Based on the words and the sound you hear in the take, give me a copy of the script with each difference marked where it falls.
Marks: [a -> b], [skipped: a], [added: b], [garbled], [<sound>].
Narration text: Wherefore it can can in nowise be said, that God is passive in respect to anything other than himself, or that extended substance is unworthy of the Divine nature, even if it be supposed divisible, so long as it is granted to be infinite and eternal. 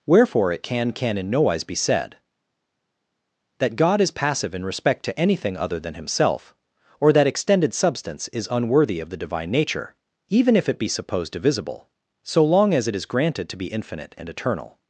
Wherefore it can can in nowise be said, that God is passive in respect to anything other than himself, or that extended substance is unworthy of the Divine nature, even if it be supposed divisible, so long as it is granted to be infinite and eternal.